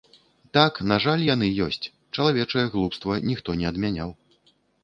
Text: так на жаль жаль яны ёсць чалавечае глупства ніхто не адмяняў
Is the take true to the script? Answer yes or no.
no